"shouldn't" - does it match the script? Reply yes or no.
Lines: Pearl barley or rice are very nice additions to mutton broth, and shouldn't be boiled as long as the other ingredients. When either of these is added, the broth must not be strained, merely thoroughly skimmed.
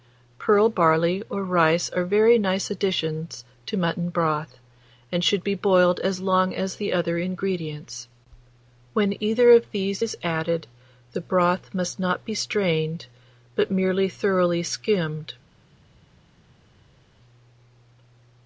no